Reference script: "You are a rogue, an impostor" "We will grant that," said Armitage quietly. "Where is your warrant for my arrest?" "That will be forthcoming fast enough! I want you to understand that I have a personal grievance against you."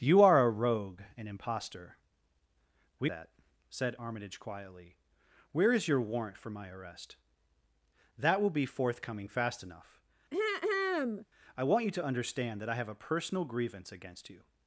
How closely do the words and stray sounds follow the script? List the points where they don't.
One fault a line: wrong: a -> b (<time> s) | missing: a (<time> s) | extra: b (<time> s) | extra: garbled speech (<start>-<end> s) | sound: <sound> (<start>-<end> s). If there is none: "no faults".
missing: will grant (3.1 s)
sound: throat clearing (10.3-11.3 s)